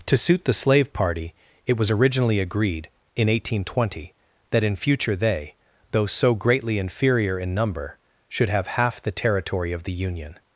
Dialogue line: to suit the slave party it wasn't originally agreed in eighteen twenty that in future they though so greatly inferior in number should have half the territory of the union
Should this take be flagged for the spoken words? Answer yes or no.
yes